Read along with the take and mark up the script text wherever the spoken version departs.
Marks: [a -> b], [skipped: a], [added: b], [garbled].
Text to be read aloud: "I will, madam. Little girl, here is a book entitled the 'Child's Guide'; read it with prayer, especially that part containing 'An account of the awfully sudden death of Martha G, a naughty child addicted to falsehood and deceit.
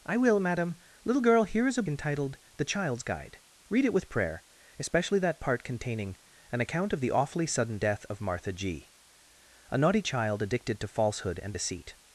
"I will, madam. Little girl, here is a [skipped: book] entitled the 'Child's Guide'; read it with prayer, especially that part containing 'An account of the awfully sudden death of Martha G, a naughty child addicted to falsehood and deceit.